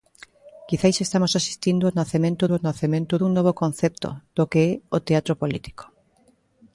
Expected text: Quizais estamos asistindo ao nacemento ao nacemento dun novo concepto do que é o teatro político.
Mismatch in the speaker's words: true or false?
false